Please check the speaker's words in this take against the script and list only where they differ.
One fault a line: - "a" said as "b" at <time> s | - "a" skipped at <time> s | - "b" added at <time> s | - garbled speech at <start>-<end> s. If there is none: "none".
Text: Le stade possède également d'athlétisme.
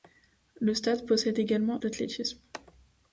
none